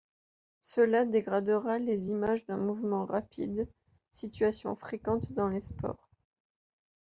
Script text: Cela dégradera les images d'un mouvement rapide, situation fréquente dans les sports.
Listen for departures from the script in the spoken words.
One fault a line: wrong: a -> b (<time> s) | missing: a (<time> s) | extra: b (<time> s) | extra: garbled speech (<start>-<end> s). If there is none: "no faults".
no faults